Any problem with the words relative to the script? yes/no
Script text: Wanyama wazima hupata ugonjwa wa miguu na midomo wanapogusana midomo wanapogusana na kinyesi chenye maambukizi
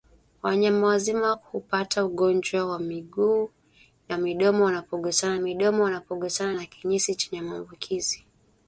no